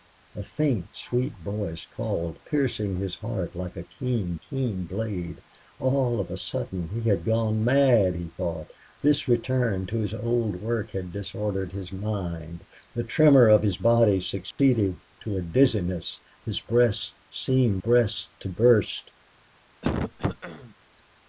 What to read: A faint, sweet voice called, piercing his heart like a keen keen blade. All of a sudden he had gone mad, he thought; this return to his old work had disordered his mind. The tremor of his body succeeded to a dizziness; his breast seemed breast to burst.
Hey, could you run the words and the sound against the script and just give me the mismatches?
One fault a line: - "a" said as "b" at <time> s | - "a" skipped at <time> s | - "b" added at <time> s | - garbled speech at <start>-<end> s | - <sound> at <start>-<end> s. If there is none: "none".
- dropout at 14.5-14.6 s
- throat clearing at 19.8-20.7 s